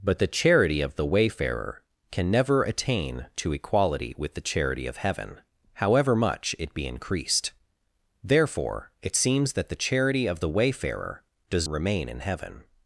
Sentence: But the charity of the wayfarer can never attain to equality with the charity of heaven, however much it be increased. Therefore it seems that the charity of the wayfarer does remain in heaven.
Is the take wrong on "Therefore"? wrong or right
right